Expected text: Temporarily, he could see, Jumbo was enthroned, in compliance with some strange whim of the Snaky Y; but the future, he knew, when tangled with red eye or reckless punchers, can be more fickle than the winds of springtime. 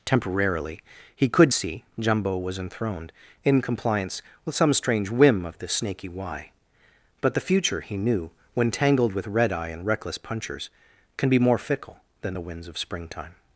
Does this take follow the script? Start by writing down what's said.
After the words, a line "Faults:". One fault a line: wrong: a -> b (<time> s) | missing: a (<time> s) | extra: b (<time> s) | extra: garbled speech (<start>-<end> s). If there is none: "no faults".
Temporarily, he could see, Jumbo was enthroned, in compliance with some strange whim of the Snaky Y; but the future, he knew, when tangled with red eye and reckless punchers, can be more fickle than the winds of springtime.
Faults:
wrong: or -> and (9.7 s)